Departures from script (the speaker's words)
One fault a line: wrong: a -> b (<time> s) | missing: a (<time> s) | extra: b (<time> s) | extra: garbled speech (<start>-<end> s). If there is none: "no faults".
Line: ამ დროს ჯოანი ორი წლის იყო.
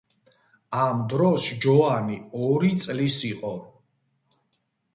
no faults